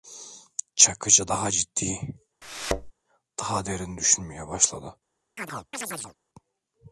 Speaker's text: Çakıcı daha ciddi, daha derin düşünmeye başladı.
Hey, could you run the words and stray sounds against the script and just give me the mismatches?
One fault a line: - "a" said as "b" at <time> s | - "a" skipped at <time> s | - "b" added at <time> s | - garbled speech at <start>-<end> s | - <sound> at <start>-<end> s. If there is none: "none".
- thud at 2.4-2.9 s
- chirp at 5.4-6.2 s